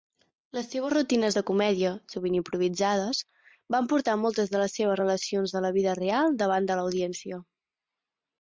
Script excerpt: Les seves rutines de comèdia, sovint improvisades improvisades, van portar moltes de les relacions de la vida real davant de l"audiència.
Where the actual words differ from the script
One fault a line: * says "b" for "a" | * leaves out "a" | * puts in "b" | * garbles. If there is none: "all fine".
* leaves out "improvisades"
* puts in "seves"